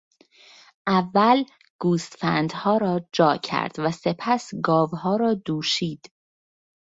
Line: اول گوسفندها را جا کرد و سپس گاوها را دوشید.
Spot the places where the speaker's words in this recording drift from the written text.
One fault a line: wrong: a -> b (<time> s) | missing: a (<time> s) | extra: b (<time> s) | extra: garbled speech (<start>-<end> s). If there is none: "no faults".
no faults